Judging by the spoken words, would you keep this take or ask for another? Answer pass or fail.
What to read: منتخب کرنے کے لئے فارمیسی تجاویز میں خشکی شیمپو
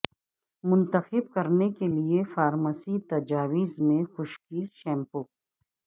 pass